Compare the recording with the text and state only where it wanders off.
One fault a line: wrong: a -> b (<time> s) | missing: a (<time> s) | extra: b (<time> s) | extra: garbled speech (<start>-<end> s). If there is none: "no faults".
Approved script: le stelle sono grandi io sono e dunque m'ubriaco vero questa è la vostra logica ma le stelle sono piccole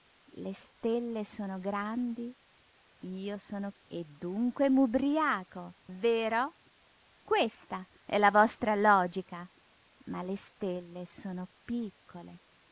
no faults